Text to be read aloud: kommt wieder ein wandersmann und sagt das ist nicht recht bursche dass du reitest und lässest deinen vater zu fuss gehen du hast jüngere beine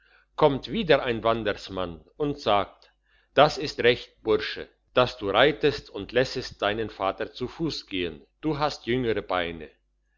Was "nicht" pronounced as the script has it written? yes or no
no